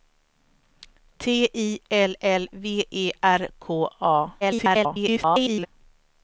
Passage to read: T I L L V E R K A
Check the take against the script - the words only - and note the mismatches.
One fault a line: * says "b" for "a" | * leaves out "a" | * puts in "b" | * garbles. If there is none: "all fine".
* garbles